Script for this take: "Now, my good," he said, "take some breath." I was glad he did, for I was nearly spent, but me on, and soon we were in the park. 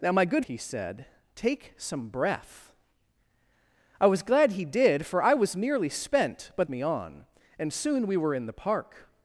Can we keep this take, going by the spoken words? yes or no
yes